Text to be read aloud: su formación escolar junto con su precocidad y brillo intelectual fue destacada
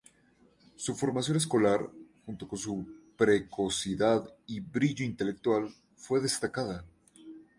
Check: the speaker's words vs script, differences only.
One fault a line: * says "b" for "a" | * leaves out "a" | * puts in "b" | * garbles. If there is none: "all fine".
all fine